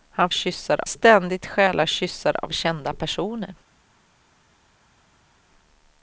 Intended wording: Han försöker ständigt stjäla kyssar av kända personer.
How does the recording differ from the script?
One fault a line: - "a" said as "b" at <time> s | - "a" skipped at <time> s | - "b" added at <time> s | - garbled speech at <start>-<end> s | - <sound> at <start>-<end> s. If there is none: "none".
- "försöker" said as "kyssar" at 0.3 s